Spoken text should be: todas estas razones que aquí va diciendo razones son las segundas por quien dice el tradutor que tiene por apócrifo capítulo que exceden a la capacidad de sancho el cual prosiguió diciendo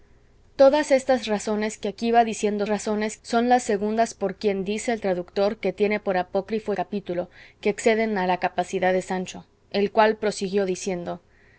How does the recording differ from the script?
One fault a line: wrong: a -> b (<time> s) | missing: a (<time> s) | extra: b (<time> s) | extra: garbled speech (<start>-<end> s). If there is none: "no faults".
no faults